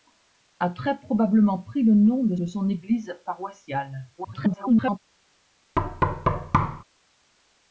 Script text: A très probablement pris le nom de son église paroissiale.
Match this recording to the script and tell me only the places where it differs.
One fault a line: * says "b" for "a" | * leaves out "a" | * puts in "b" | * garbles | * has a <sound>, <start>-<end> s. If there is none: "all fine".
* puts in "de"
* garbles
* has a thud, 5.8-6.8 s